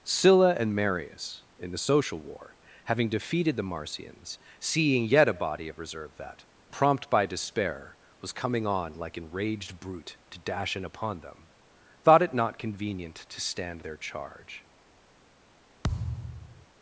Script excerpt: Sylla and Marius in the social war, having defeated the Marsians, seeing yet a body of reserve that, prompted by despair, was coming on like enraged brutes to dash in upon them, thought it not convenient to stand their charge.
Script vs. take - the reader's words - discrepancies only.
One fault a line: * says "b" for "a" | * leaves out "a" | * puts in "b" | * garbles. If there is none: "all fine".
* says "prompt" for "prompted"
* says "brute" for "brutes"